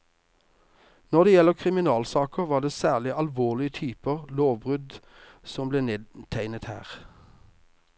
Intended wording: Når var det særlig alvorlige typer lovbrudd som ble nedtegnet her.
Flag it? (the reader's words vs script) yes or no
yes